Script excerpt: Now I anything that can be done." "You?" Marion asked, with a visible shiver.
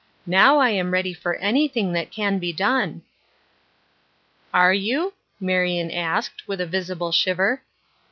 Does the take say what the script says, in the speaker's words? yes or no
no